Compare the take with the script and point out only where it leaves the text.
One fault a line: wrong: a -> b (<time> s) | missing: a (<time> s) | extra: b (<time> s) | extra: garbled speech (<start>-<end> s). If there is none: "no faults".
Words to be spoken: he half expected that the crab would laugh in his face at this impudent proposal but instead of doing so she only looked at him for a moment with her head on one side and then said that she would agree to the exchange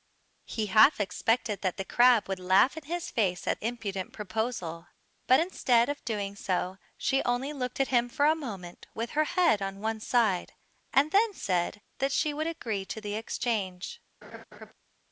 missing: this (3.6 s)